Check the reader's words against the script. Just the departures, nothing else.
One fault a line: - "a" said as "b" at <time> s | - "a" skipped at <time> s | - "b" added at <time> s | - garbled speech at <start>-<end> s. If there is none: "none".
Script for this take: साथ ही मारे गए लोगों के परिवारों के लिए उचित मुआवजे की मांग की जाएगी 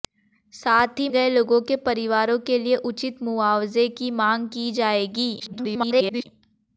- "मारे" skipped at 1.1 s
- garbled speech at 5.4-6.2 s